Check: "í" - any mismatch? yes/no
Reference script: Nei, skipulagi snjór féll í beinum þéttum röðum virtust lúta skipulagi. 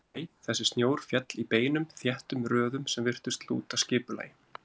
no